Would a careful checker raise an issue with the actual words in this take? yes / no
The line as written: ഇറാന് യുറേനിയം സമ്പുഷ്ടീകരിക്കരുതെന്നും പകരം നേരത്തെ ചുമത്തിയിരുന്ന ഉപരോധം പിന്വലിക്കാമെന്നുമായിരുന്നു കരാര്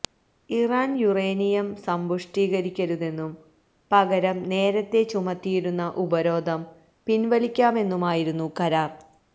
no